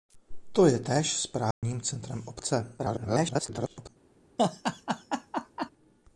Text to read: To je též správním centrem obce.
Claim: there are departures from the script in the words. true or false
true